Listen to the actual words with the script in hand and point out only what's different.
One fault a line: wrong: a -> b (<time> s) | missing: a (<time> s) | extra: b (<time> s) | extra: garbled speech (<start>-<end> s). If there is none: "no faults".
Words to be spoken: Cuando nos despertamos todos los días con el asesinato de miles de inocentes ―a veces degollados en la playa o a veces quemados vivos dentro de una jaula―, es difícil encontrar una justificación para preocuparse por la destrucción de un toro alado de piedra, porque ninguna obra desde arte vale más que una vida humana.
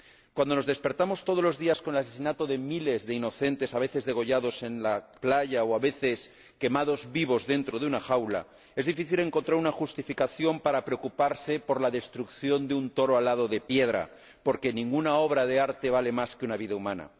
wrong: desde -> de (15.5 s)